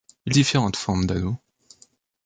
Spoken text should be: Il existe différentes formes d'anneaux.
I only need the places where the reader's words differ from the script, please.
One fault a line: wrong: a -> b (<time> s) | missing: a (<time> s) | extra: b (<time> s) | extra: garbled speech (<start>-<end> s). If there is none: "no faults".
missing: existe (0.3 s)